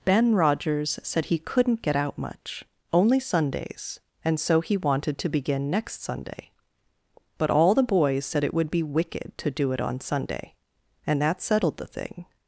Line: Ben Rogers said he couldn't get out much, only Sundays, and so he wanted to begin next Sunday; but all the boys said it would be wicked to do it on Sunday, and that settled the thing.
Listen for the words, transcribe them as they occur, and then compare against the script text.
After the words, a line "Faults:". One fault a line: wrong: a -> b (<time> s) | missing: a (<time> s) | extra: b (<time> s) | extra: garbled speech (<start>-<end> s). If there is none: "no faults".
Ben Rogers said he couldn't get out much, only Sundays, and so he wanted to begin next Sunday; but all the boys said it would be wicked to do it on Sunday, and that settled the thing.
Faults:
no faults